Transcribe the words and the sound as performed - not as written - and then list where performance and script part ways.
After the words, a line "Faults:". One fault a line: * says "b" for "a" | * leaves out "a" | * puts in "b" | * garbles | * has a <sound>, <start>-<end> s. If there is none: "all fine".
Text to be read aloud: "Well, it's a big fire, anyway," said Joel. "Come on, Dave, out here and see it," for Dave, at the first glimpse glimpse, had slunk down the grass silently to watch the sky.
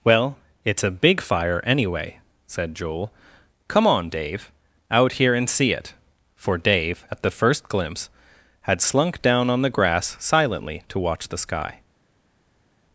"Well, it's a big fire, anyway," said Joel. "Come on, Dave, out here and see it," for Dave, at the first glimpse, had slunk down on the grass silently to watch the sky.
Faults:
* leaves out "glimpse"
* puts in "on"